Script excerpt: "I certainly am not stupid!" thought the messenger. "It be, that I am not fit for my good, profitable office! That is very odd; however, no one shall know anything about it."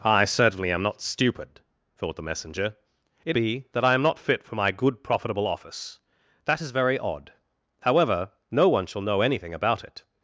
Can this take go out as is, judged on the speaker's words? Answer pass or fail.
pass